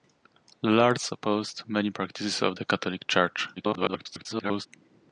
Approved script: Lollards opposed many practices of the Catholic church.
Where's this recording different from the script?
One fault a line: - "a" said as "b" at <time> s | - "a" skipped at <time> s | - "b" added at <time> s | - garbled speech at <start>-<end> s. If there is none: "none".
- garbled speech at 3.6-4.7 s